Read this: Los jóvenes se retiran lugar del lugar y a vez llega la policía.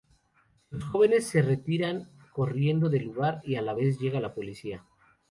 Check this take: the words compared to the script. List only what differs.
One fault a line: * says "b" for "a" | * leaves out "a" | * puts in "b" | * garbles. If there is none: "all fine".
* says "corriendo" for "lugar"
* puts in "la"